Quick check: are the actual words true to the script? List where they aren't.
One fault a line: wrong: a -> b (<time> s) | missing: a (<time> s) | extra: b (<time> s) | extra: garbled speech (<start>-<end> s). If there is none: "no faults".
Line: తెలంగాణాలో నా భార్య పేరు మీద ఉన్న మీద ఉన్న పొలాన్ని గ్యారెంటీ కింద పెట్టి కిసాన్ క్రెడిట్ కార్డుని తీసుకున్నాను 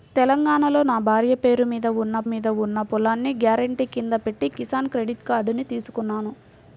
no faults